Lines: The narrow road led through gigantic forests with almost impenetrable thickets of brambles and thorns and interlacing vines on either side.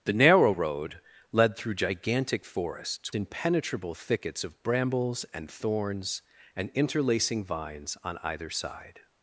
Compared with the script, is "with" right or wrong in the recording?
wrong